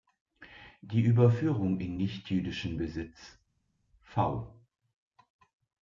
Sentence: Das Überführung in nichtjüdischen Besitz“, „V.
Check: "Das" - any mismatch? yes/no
yes